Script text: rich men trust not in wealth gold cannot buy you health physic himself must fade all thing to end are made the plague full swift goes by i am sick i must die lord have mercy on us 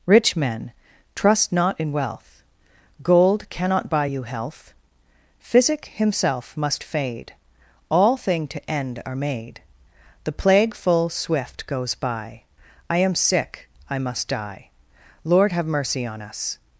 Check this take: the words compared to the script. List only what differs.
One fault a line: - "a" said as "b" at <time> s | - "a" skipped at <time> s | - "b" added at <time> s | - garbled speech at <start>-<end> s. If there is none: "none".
none